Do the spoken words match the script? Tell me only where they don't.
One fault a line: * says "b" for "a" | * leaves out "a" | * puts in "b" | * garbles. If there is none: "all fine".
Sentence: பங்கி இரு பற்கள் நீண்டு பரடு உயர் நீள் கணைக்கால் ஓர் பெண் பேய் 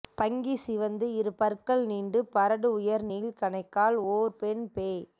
* puts in "சிவந்து"